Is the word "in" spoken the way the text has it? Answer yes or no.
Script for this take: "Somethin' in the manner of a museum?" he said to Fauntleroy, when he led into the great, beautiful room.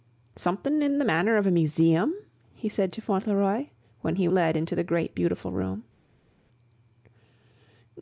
yes